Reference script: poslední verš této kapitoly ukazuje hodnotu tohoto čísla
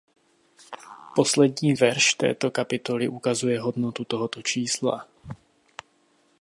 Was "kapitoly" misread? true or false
false